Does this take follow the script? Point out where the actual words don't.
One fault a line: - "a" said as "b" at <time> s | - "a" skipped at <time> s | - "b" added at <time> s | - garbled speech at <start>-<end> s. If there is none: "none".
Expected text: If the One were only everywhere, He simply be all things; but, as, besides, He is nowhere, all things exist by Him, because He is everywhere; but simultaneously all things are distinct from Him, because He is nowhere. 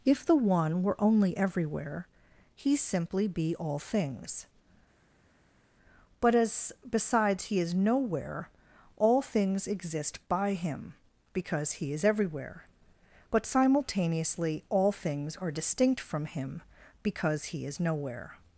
none